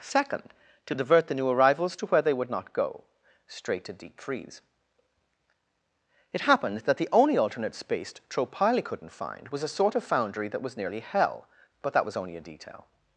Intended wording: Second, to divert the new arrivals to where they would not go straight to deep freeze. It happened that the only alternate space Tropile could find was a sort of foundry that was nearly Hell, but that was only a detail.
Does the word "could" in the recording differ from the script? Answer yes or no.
yes